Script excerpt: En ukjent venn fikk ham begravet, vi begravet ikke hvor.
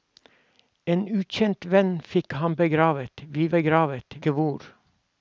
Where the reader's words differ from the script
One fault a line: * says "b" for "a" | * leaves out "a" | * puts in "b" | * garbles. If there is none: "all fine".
all fine